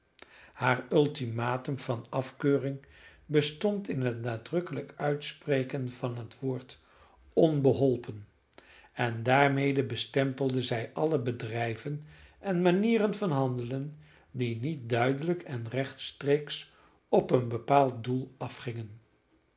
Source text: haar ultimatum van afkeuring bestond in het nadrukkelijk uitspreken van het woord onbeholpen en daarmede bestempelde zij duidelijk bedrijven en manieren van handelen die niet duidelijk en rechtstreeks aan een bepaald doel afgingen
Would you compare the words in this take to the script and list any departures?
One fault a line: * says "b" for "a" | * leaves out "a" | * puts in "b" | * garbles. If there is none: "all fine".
* says "alle" for "duidelijk"
* says "op" for "aan"